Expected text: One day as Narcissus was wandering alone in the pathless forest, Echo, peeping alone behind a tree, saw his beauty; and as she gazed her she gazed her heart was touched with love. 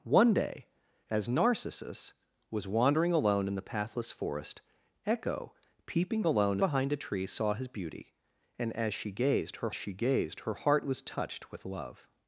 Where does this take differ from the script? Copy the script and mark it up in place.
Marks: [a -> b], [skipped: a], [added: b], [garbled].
One day as Narcissus was wandering alone in the pathless forest, Echo, peeping alone behind a tree, saw his beauty; and as she gazed her she gazed her heart was touched with love.